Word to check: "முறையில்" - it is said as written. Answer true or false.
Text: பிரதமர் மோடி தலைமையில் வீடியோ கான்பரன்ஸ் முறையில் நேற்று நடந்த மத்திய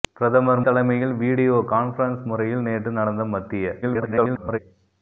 true